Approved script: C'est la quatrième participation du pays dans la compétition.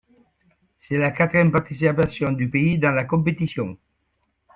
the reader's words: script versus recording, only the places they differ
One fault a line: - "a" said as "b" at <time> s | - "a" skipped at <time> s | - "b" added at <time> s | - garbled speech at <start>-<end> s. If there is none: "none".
none